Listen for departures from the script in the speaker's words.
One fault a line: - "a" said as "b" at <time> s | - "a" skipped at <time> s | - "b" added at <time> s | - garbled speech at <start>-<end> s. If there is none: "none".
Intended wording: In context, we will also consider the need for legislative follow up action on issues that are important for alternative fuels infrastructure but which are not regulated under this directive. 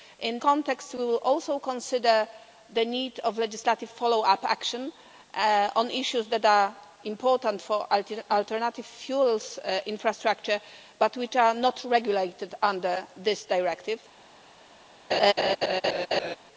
none